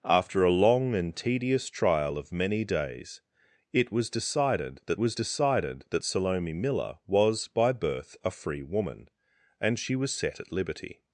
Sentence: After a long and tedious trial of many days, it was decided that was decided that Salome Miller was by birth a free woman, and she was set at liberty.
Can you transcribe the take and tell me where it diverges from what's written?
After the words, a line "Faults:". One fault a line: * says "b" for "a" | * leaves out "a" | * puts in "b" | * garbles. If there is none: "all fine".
After a long and tedious trial of many days, it was decided that was decided that Salome Miller was by birth a free woman, and she was set at liberty.
Faults:
all fine